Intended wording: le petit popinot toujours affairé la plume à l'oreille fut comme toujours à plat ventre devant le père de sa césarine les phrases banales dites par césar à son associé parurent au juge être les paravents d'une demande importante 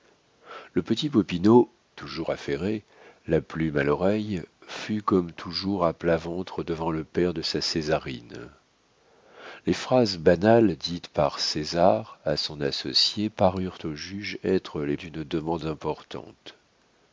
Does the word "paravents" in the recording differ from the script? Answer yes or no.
yes